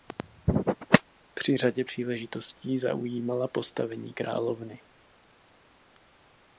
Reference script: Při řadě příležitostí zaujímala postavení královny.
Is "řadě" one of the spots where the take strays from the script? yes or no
no